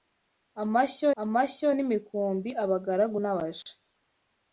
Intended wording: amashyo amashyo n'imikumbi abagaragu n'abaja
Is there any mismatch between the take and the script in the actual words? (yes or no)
no